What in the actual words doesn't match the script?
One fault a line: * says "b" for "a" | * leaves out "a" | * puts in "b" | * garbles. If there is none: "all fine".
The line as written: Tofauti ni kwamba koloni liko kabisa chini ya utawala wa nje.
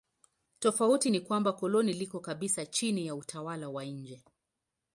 all fine